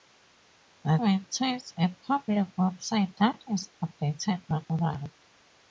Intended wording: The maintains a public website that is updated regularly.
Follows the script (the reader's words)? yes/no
yes